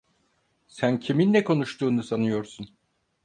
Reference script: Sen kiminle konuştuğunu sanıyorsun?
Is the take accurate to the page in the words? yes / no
yes